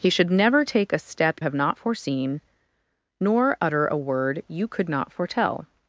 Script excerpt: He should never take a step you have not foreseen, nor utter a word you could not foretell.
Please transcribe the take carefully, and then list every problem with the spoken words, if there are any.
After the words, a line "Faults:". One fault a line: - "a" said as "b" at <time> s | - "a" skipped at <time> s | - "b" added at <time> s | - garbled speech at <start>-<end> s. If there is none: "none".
He should never take a step have not foreseen, nor utter a word you could not foretell.
Faults:
- "you" skipped at 1.4 s